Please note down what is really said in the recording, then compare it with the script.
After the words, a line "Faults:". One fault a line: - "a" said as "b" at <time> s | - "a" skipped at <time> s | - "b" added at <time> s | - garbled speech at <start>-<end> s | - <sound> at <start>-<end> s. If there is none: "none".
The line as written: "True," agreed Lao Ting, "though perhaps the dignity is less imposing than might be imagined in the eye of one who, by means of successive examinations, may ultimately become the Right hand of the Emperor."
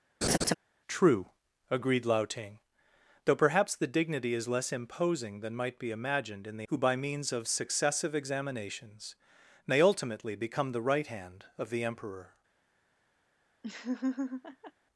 "True," agreed Lao Ting, "though perhaps the dignity is less imposing than might be imagined in the who, by means of successive examinations, may ultimately become the Right hand of the Emperor."
Faults:
- laugh at 0.2-0.5 s
- "eye of one" skipped at 6.7 s
- laugh at 13.6-14.7 s